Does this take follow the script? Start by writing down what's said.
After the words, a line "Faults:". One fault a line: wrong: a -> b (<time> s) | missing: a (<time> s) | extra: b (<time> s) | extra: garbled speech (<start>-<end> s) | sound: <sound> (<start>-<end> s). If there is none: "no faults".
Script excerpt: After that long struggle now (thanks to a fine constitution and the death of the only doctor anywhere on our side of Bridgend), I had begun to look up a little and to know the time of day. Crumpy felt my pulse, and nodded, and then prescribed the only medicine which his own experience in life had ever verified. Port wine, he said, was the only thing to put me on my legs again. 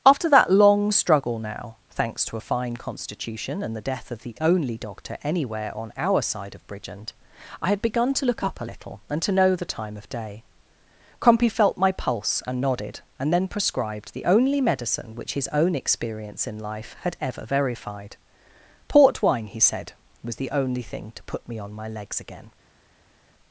After that long struggle now (thanks to a fine constitution and the death of the only doctor anywhere on our side of Bridgend), I had begun to look up a little and to know the time of day. Crumpy felt my pulse, and nodded, and then prescribed the only medicine which his own experience in life had ever verified. Port wine, he said, was the only thing to put me on my legs again.
Faults:
no faults